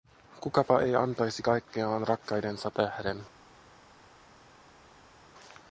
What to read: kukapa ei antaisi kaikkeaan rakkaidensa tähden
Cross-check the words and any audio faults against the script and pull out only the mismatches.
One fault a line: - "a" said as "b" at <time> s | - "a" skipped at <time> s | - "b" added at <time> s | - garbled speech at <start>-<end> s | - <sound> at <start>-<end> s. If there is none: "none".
none